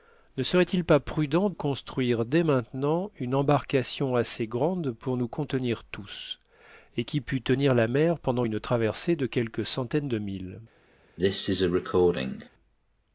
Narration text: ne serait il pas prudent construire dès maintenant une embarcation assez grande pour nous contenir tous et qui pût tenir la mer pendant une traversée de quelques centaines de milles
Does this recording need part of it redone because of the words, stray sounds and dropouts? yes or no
yes